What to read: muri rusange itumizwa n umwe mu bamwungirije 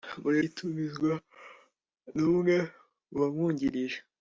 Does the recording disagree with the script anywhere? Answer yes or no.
yes